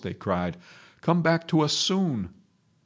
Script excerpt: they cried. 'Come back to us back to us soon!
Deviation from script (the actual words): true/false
true